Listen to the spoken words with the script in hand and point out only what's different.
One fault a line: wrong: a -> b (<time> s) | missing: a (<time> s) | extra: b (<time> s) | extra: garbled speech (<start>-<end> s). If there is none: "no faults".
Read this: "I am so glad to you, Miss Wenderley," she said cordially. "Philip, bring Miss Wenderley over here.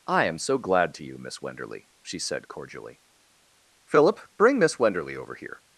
no faults